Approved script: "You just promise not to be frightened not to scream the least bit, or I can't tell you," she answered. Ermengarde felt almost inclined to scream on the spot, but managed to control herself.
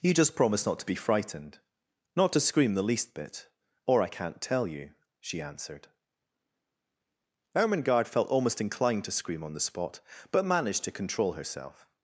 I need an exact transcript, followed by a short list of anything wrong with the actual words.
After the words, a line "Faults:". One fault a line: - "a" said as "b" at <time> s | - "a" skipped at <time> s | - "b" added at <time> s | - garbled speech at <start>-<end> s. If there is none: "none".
"You just promise not to be frightened not to scream the least bit, or I can't tell you," she answered. Ermengarde felt almost inclined to scream on the spot, but managed to control herself.
Faults:
none